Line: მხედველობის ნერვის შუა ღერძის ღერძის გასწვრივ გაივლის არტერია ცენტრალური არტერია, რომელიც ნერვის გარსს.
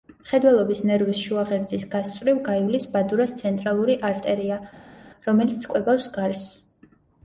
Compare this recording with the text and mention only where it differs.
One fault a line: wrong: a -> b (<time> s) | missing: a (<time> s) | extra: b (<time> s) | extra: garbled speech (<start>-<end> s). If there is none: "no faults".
missing: ღერძის (1.8 s)
wrong: არტერია -> ბადურას (3.0 s)
wrong: ნერვის -> კვებავს (5.7 s)